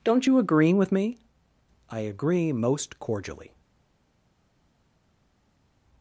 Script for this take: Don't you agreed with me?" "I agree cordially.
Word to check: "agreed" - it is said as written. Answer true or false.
false